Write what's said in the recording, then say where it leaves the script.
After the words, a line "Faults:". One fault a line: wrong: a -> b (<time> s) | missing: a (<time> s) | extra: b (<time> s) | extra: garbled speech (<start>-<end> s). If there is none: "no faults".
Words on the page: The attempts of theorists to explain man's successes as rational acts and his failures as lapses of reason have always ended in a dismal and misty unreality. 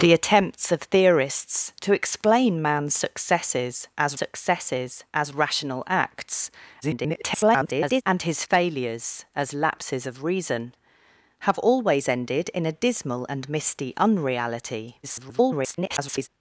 The attempts of theorists to explain man's successes as successes as rational acts [garbled] and his failures as lapses of reason have always ended in a dismal and misty unreality. [garbled]
Faults:
extra: successes as (4.1 s)
extra: garbled speech (6.8-8.0 s)
extra: garbled speech (15.0-16.3 s)